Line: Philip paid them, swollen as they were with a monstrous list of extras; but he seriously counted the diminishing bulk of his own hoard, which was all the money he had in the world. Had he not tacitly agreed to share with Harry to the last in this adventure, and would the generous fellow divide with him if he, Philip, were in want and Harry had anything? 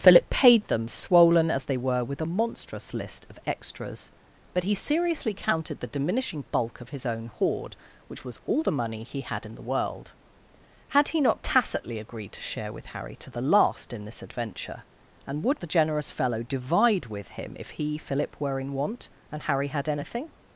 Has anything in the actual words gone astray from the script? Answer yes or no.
no